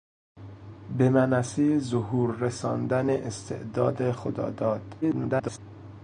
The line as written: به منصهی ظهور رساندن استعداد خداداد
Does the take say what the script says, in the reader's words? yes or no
no